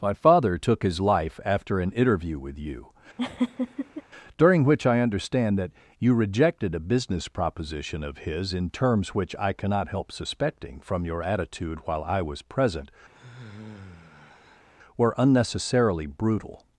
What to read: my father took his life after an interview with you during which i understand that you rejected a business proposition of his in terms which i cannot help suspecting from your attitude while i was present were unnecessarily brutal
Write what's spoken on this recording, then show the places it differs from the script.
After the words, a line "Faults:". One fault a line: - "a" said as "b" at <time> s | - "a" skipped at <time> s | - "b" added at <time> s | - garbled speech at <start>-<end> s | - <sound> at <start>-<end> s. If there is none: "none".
my father took his life after an interview with you during which i understand that you rejected a business proposition of his in terms which i cannot help suspecting from your attitude while i was present were unnecessarily brutal
Faults:
- laugh at 3.2-4.0 s
- sigh at 13.1-14.7 s